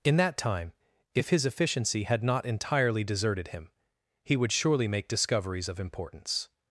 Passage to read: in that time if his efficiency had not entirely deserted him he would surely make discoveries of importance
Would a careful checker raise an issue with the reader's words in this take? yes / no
no